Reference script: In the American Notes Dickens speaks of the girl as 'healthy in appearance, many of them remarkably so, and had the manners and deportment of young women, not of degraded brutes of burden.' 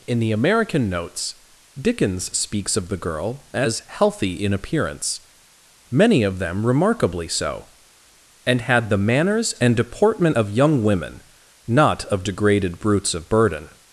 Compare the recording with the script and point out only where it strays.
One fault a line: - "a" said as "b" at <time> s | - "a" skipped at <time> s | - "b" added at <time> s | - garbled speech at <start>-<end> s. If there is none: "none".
none